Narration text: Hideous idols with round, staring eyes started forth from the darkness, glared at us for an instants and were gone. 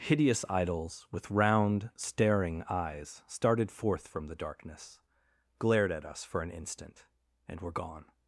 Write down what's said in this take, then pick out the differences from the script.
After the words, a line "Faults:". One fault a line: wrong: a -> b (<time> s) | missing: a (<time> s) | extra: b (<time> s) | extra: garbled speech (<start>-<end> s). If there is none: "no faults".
Hideous idols with round, staring eyes started forth from the darkness, glared at us for an instant and were gone.
Faults:
wrong: instants -> instant (6.5 s)